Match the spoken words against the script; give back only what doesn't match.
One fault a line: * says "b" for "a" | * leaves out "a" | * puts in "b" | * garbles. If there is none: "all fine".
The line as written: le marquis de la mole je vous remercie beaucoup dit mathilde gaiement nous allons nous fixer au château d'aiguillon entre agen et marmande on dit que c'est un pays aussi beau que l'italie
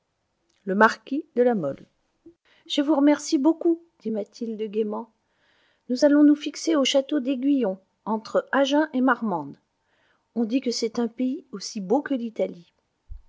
all fine